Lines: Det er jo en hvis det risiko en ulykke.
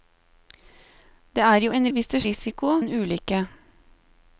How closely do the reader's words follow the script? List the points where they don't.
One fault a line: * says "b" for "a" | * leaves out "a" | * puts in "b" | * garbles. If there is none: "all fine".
all fine